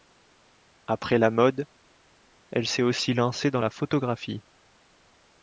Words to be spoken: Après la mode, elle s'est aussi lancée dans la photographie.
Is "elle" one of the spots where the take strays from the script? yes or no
no